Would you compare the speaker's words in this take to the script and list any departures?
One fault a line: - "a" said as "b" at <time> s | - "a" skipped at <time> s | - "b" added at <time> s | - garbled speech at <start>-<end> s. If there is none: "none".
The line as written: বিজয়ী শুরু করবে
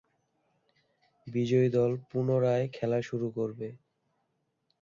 - "দল পুনরায় খেলা" added at 1.7 s